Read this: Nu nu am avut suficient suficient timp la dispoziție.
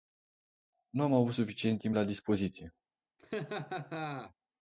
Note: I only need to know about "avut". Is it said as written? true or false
true